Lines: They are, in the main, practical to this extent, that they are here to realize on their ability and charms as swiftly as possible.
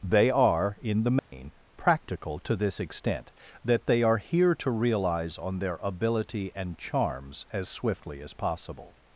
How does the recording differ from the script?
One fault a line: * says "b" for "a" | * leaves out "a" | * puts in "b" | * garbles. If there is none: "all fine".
all fine